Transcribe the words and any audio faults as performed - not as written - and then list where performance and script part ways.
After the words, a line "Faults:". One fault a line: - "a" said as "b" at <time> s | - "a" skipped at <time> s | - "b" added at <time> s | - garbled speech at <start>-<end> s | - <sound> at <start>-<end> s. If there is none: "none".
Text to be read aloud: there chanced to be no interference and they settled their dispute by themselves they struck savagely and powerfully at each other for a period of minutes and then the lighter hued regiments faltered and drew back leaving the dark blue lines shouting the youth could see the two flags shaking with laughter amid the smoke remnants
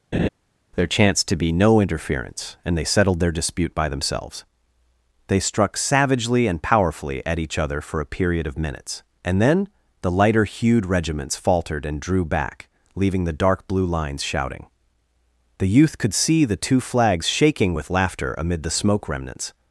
there chanced to be no interference and they settled their dispute by themselves they struck savagely and powerfully at each other for a period of minutes and then the lighter hued regiments faltered and drew back leaving the dark blue lines shouting the youth could see the two flags shaking with laughter amid the smoke remnants
Faults:
- laugh at 0.1-0.3 s